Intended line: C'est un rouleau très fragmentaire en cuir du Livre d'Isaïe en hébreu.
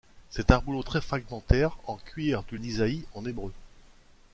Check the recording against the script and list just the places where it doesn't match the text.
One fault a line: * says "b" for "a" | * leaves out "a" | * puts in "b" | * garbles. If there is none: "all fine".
* leaves out "Livre"